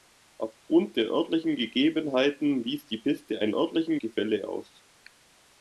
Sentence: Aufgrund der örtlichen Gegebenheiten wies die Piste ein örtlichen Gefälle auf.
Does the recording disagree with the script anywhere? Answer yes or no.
no